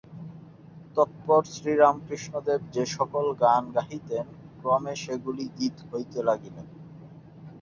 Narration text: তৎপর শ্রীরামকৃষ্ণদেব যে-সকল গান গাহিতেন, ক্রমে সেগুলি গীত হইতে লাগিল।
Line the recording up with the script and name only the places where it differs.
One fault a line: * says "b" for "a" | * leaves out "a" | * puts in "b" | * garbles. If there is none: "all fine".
all fine